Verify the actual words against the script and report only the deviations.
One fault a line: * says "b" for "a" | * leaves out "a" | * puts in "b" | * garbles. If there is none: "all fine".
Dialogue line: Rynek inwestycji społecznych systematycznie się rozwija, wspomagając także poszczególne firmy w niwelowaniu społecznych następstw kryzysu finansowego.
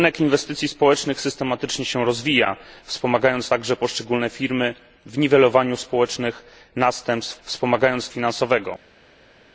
* says "wspomagając" for "kryzysu"